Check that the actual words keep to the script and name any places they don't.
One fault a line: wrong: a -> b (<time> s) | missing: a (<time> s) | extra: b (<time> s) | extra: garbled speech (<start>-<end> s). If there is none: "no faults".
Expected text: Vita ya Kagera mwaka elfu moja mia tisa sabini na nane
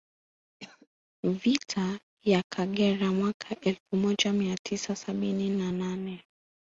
no faults